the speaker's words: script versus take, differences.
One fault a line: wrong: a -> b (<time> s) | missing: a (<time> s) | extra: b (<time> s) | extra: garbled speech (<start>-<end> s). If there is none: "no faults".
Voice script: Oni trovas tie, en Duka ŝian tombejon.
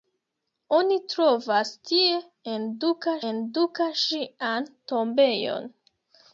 extra: en Duka (3.3 s)